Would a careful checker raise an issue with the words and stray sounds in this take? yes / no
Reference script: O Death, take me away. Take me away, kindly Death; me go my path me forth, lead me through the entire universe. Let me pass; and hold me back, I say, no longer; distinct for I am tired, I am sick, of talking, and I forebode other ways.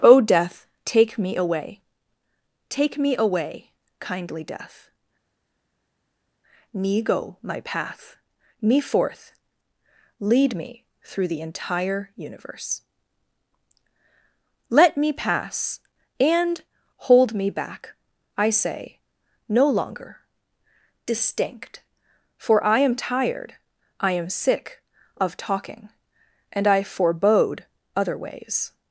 no